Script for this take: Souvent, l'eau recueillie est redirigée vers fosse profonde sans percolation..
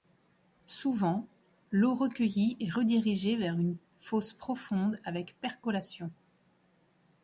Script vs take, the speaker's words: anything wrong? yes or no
yes